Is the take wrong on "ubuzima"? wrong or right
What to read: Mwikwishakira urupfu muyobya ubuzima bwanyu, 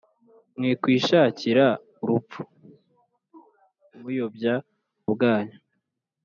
wrong